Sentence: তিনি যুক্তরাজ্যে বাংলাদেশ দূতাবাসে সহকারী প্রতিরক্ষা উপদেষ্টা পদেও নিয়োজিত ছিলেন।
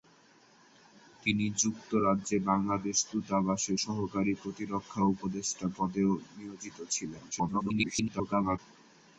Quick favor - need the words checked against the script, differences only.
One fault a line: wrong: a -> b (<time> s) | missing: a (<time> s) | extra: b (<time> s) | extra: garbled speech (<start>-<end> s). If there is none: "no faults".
extra: garbled speech (7.3-8.6 s)